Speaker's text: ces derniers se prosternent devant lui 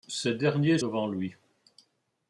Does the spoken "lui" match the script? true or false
true